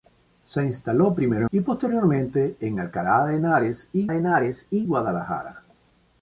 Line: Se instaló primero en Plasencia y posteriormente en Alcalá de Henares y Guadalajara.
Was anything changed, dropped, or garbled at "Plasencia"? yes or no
yes